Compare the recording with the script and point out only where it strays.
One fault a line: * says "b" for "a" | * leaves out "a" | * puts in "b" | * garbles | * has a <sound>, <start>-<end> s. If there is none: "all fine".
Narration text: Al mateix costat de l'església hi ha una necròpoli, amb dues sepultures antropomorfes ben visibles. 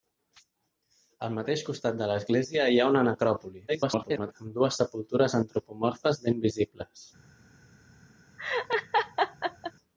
* garbles
* has a laugh, 8.4-9.7 s